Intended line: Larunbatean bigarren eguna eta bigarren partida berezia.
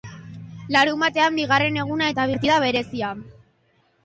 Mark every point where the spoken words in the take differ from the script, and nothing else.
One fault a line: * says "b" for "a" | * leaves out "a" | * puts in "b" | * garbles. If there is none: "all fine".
* leaves out "bigarren"